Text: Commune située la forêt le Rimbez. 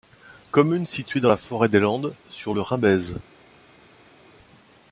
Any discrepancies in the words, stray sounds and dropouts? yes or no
yes